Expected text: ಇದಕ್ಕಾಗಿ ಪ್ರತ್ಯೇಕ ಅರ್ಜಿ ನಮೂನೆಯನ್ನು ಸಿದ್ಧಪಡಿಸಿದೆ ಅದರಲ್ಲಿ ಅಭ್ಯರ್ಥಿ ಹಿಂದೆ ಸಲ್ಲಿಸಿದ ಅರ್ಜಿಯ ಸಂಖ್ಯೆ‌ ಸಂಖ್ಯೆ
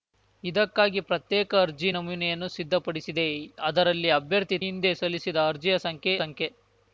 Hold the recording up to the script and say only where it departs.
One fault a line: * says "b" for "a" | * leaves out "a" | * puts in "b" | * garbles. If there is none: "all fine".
all fine